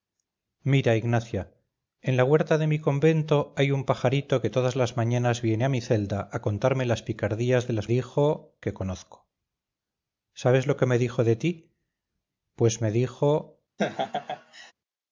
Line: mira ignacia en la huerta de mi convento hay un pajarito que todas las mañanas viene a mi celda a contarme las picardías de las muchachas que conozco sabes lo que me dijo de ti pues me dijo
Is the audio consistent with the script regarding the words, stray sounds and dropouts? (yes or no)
no